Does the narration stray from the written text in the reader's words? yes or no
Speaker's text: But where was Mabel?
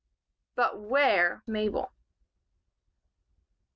yes